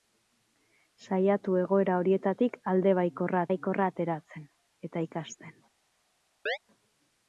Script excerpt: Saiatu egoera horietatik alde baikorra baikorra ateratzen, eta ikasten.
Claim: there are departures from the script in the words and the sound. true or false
true